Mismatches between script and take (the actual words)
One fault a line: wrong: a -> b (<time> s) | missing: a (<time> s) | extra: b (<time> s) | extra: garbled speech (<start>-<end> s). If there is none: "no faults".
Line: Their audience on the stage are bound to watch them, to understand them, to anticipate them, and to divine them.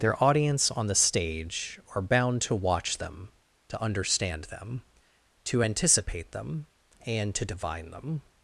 no faults